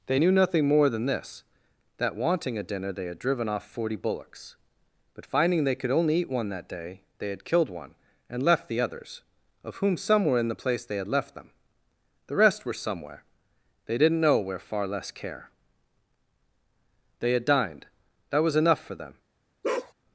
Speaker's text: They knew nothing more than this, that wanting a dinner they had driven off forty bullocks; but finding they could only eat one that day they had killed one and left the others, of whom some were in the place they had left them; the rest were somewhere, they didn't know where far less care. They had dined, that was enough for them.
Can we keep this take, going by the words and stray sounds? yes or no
no